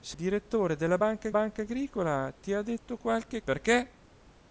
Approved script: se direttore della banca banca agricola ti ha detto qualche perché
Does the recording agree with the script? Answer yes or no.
yes